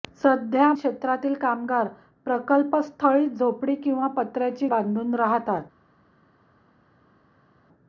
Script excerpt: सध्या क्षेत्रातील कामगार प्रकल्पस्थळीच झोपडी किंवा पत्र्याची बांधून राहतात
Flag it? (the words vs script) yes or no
no